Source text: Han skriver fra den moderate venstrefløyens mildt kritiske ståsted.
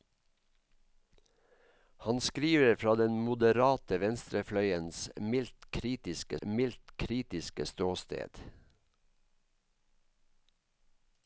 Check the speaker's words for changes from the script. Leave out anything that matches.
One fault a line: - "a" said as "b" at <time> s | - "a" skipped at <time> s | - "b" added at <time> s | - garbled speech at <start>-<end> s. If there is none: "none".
- "mildt kritiske" added at 6.5 s